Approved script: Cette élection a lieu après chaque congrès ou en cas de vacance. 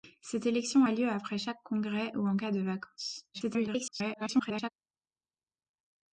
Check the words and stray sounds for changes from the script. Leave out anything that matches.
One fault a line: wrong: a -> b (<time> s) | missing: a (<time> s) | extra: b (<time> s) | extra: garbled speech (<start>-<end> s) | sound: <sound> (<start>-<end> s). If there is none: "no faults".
extra: garbled speech (3.3-4.7 s)